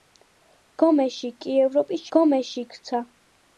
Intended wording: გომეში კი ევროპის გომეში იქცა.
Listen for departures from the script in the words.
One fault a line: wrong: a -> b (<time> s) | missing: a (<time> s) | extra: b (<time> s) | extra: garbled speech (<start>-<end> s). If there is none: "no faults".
no faults